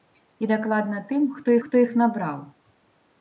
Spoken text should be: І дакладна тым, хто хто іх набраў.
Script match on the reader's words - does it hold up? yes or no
yes